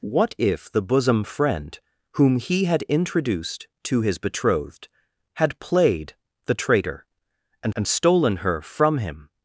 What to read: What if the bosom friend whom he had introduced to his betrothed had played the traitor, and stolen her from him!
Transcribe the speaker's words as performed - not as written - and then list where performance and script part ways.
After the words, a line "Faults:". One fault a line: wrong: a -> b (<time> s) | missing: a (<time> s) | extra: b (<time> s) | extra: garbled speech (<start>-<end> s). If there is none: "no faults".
What if the bosom friend whom he had introduced to his betrothed had played the traitor, and and stolen her from him!
Faults:
extra: and (7.7 s)